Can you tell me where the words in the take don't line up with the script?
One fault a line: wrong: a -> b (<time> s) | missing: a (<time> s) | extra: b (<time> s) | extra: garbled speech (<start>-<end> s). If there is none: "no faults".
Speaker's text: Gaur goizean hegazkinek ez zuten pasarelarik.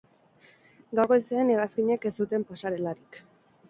no faults